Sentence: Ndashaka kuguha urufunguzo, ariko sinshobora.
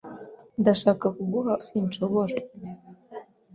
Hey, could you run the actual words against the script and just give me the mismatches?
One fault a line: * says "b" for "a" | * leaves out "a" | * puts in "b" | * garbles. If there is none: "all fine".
* leaves out "urufunguzo ariko"